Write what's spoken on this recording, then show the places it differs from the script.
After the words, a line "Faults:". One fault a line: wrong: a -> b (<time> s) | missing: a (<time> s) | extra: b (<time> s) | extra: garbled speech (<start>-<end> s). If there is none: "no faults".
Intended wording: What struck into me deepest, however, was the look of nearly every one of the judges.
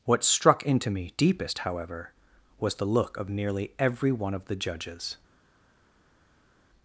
What struck into me deepest, however, was the look of nearly every one of the judges.
Faults:
no faults